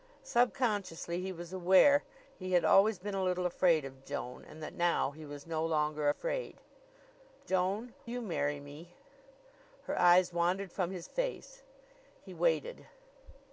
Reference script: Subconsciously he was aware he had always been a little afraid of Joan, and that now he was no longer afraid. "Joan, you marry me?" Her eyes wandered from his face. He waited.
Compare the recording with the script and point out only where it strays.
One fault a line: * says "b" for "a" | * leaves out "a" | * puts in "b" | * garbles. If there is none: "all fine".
all fine